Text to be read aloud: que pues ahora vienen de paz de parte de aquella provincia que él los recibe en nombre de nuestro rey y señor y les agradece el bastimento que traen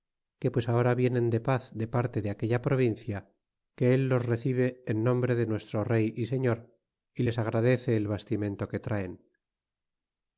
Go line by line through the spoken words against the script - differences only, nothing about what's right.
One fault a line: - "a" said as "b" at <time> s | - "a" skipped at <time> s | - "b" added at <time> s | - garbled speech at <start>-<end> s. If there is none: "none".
none